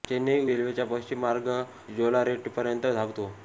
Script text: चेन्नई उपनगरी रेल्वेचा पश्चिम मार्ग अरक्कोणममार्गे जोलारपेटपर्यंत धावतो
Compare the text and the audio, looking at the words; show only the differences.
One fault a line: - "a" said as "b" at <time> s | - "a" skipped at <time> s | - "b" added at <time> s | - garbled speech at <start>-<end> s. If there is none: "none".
- "उपनगरी" skipped at 0.5 s
- "अरक्कोणममार्गे" skipped at 1.5 s